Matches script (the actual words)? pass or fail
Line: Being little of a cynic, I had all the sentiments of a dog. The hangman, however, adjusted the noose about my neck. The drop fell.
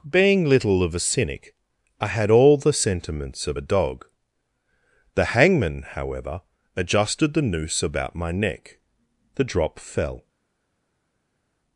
pass